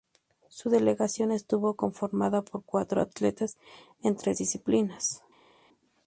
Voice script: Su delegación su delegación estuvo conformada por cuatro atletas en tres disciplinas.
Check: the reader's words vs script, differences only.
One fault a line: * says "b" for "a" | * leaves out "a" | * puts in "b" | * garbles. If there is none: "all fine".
* leaves out "su delegación"